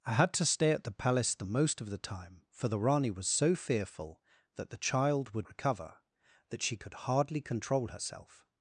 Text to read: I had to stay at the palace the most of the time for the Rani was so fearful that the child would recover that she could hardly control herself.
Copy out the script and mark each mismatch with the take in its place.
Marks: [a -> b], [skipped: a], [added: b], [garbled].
I had to stay at the palace the most of the time for the Rani was so fearful that the child would recover that she could hardly control herself.